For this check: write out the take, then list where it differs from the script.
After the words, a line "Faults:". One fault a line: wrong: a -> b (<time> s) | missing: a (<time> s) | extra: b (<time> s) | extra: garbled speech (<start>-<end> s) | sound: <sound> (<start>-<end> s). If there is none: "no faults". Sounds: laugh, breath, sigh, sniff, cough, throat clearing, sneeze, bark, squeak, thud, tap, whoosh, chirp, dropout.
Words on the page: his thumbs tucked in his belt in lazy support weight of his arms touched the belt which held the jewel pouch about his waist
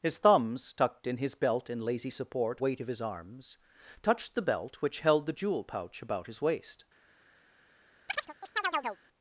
his thumbs tucked in his belt in lazy support weight of his arms touched the belt which held the jewel pouch about his waist
Faults:
sound: chirp (8.1-9.0 s)